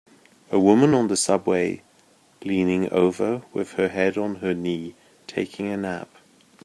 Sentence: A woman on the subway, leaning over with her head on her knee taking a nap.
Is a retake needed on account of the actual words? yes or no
no